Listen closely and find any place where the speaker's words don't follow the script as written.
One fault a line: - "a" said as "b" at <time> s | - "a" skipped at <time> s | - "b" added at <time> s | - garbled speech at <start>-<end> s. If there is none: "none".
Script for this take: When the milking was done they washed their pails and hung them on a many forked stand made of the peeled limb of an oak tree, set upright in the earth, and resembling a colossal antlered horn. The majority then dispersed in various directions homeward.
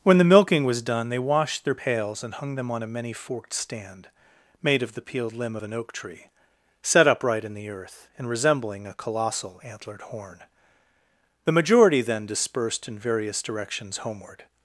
none